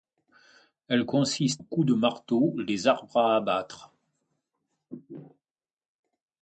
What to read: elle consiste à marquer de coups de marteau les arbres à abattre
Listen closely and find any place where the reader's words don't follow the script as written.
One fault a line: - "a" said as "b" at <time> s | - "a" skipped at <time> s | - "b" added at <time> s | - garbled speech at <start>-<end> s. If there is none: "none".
- "à marquer de" skipped at 1.6 s